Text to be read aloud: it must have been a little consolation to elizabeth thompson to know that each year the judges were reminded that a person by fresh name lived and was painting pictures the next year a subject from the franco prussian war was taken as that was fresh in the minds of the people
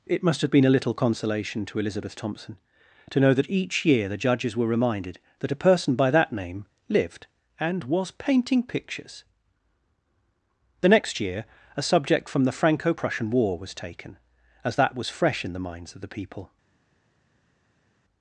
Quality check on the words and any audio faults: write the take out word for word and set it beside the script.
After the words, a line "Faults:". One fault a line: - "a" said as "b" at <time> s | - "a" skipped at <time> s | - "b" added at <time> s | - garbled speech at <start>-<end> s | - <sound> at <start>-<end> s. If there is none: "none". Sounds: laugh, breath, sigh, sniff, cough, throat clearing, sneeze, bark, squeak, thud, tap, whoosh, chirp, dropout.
it must have been a little consolation to elizabeth thompson to know that each year the judges were reminded that a person by that name lived and was painting pictures the next year a subject from the franco prussian war was taken as that was fresh in the minds of the people
Faults:
- "fresh" said as "that" at 6.1 s